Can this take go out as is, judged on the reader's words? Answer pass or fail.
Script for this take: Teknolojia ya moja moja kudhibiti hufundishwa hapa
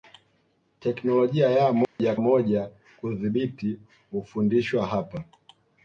pass